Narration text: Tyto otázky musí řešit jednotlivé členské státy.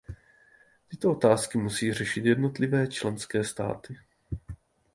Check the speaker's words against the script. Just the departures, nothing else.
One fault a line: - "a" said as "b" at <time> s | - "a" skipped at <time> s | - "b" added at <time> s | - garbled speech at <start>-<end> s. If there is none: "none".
none